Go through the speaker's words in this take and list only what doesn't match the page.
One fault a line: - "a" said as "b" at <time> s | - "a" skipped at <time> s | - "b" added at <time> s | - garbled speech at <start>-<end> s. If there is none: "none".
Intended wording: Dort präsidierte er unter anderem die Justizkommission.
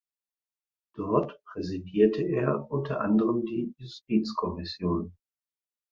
none